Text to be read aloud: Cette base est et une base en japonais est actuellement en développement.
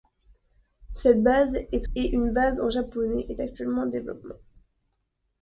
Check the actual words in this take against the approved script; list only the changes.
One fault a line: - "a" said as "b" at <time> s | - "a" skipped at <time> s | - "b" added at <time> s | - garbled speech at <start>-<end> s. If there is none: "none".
none